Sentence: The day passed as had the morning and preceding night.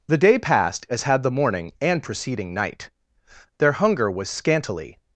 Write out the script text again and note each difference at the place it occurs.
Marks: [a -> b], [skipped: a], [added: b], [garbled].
The day passed as had the morning and preceding night. [added: Their hunger was scantily]